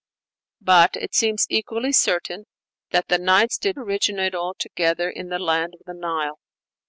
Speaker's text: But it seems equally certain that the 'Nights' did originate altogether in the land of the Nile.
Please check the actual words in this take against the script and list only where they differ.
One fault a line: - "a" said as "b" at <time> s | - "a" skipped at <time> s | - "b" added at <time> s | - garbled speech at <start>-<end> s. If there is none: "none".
none